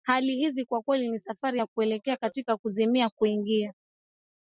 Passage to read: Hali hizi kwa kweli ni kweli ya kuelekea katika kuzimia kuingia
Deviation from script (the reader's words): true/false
true